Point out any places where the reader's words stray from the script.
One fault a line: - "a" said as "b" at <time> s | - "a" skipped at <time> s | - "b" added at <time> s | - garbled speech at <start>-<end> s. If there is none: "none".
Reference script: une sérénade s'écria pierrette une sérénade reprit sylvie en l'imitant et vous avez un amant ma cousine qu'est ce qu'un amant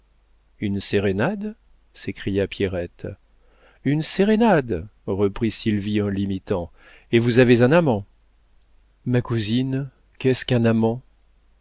none